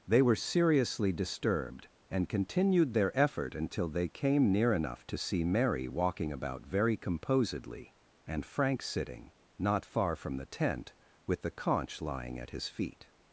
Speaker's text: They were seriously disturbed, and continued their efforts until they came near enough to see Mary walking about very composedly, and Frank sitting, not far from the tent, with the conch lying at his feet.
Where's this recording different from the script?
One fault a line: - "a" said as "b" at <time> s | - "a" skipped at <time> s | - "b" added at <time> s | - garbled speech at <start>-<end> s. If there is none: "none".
- "efforts" said as "effort" at 3.2 s